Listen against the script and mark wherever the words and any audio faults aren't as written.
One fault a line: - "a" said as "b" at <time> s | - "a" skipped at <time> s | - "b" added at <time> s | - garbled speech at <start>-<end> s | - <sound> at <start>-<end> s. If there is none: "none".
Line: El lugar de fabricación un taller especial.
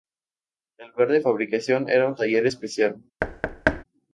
- "era" added at 1.9 s
- thud at 3.2-3.8 s